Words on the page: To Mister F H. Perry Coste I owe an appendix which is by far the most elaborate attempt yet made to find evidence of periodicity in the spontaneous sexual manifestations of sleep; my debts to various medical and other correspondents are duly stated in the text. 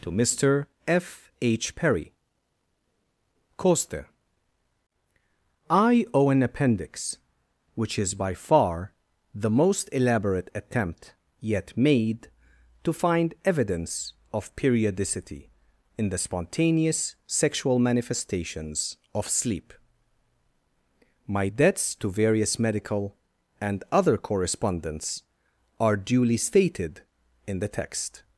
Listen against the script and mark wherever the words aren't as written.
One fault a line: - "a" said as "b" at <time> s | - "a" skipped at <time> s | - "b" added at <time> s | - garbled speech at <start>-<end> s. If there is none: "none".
none